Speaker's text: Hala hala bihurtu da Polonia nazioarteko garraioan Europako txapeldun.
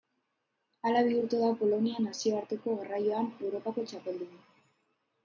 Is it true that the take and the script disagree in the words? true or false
true